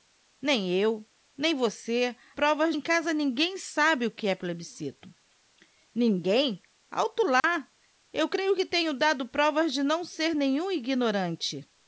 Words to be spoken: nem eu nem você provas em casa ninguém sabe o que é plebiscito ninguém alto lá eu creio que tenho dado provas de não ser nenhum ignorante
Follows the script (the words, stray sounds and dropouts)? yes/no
no